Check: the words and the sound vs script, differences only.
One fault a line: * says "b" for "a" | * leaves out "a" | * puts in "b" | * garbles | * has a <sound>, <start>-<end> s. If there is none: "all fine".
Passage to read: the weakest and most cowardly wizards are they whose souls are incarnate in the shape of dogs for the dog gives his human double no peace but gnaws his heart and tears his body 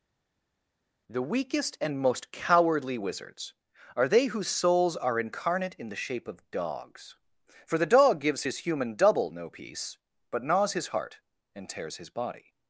all fine